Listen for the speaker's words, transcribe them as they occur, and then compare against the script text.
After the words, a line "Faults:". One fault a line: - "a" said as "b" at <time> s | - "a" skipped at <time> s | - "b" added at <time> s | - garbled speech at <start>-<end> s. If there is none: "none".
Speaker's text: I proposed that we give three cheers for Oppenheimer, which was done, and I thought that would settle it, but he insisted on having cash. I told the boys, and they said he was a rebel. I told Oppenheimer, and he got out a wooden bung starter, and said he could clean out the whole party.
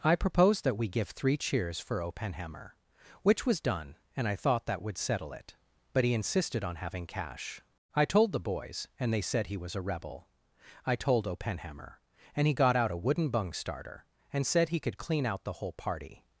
I proposed that we give three cheers for Oppenheimer, which was done, and I thought that would settle it, but he insisted on having cash. I told the boys, and they said he was a rebel. I told Oppenheimer, and he got out a wooden bung starter, and said he could clean out the whole party.
Faults:
none